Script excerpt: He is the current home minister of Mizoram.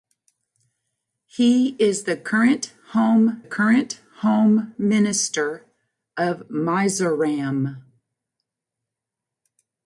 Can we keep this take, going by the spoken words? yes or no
no